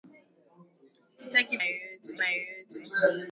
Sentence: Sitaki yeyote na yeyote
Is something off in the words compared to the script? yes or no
no